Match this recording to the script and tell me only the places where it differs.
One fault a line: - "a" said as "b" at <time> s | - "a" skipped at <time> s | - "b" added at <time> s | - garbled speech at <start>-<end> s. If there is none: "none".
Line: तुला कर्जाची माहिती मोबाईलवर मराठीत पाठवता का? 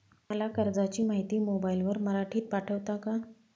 - "तुला" said as "मला" at 0.3 s